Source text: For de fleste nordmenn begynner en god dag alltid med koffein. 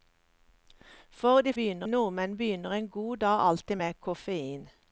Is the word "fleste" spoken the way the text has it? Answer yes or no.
no